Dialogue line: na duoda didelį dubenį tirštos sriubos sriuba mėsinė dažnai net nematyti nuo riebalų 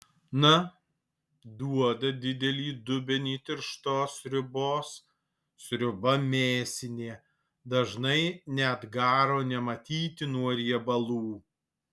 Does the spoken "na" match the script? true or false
true